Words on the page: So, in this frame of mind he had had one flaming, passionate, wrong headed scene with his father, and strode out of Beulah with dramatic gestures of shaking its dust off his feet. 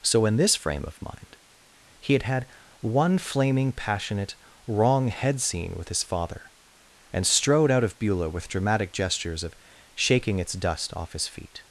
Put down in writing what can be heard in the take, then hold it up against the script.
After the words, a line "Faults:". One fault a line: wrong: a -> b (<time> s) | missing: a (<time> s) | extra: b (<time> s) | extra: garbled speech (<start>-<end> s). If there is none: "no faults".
So, in this frame of mind he had had one flaming, passionate, wrong head scene with his father, and strode out of Beulah with dramatic gestures of shaking its dust off his feet.
Faults:
wrong: headed -> head (5.1 s)